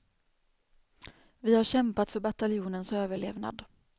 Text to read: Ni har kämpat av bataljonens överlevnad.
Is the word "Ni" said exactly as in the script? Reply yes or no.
no